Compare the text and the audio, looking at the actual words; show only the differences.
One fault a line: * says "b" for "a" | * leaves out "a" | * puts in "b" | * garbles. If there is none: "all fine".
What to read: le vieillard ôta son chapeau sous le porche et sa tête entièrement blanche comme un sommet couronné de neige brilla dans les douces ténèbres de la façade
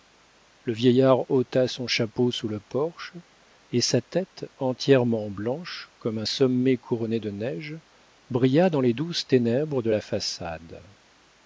all fine